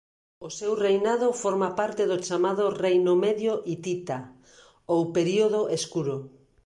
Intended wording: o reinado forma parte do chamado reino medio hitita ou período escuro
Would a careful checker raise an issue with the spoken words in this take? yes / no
yes